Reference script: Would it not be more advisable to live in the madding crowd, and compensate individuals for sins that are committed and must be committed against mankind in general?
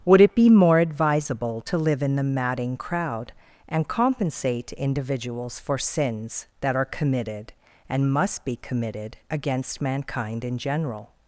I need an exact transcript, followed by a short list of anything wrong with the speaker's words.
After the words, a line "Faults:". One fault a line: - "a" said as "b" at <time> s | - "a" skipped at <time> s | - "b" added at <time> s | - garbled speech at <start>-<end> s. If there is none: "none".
Would it be more advisable to live in the madding crowd, and compensate individuals for sins that are committed and must be committed against mankind in general?
Faults:
- "not" skipped at 0.3 s